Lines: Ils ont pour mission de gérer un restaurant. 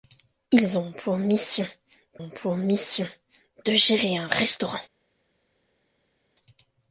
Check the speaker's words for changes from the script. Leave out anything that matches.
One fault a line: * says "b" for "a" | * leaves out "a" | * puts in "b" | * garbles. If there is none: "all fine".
* puts in "ont pour mission"